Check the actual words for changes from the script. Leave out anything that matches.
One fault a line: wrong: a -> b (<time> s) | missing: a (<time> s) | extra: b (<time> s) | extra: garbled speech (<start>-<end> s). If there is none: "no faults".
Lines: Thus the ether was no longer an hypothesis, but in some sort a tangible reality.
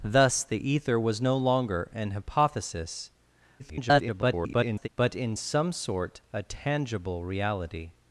extra: garbled speech (3.6-4.9 s)